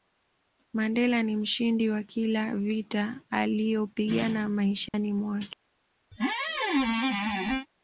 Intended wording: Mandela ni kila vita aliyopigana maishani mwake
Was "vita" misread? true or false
false